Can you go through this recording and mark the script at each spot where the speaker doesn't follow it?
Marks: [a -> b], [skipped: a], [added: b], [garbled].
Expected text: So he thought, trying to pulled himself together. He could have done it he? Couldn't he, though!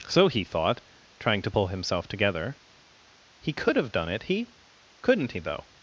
So he thought, trying to [pulled -> pull] himself together. He could have done it he? Couldn't he, though!